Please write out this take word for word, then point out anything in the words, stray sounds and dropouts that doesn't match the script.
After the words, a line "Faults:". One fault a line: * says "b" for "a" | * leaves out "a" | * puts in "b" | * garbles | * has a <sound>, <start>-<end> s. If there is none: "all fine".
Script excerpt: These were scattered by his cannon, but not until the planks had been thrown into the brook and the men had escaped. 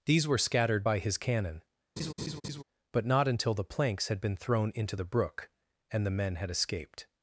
These were scattered by his cannon, but not until the planks had been thrown into the brook and the men had escaped.
Faults:
* has a laugh, 2.0-2.6 s